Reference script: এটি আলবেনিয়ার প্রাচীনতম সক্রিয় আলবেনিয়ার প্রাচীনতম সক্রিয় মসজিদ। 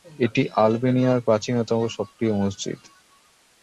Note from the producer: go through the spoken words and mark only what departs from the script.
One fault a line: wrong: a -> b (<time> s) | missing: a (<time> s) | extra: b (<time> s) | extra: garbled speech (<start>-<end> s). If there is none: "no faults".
missing: আলবেনিয়ার প্রাচীনতম সক্রিয় (2.3 s)